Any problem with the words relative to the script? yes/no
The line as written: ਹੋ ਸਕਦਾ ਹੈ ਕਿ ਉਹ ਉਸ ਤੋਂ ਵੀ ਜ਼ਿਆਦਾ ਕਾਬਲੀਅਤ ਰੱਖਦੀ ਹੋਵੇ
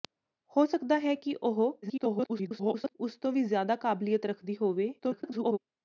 yes